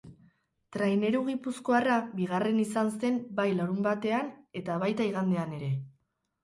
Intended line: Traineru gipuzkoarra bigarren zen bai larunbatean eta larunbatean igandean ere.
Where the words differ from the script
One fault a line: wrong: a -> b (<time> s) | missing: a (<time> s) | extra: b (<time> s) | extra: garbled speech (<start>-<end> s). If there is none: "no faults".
extra: izan (2.6 s)
wrong: larunbatean -> baita (4.9 s)